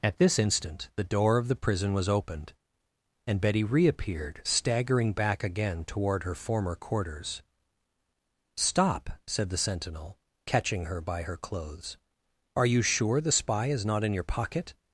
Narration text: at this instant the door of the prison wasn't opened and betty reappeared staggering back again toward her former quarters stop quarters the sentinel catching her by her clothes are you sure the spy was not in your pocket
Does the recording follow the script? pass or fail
fail